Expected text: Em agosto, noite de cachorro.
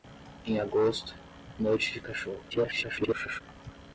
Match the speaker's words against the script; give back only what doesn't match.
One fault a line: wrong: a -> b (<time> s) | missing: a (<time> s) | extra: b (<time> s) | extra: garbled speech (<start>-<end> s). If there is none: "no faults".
extra: garbled speech (2.5-3.4 s)